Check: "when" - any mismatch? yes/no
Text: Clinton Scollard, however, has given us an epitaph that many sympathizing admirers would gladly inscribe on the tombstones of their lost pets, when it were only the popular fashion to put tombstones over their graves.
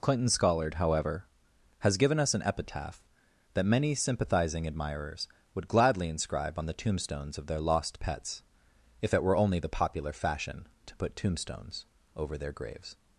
yes